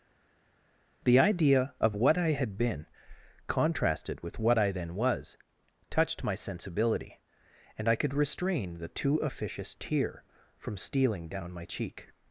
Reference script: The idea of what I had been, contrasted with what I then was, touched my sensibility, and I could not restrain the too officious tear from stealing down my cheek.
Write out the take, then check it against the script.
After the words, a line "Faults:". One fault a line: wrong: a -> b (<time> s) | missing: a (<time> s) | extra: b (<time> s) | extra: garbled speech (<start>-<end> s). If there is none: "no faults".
The idea of what I had been, contrasted with what I then was, touched my sensibility, and I could restrain the too officious tear from stealing down my cheek.
Faults:
missing: not (8.1 s)